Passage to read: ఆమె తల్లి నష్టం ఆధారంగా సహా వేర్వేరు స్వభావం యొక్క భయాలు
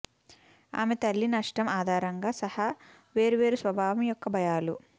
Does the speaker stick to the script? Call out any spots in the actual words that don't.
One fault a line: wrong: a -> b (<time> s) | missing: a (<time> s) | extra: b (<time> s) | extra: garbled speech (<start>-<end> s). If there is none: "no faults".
no faults